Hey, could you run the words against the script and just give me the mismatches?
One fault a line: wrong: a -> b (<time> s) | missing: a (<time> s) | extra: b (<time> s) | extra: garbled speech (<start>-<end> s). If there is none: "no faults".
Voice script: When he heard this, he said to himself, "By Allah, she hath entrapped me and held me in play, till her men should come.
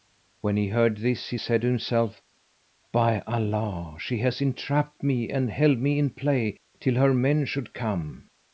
no faults